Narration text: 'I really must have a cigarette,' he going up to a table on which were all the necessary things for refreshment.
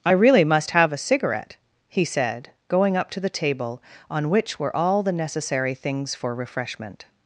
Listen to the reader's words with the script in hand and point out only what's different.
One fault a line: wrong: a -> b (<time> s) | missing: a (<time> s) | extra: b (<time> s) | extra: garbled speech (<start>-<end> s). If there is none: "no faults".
extra: said (2.0 s)
wrong: a -> the (3.2 s)